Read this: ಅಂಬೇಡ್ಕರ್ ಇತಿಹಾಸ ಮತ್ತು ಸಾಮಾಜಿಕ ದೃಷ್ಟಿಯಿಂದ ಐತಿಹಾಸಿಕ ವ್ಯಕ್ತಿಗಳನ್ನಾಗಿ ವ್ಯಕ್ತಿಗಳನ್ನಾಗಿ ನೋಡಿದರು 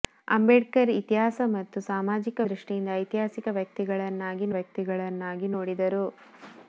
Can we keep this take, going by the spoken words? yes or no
yes